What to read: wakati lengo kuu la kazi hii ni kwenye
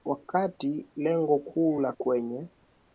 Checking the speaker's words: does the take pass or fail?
fail